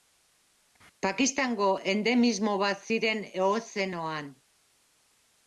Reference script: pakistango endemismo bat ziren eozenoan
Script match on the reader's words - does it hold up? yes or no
yes